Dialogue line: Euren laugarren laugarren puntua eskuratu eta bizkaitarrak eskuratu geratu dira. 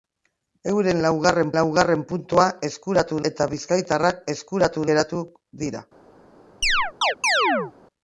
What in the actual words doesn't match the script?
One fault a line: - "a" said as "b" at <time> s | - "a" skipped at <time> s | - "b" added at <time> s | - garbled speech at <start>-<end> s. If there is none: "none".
none